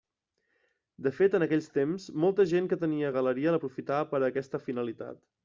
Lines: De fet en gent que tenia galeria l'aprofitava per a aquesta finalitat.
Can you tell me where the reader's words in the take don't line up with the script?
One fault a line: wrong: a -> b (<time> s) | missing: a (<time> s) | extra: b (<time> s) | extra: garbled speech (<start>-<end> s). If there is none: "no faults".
extra: aquells temps molta (1.4 s)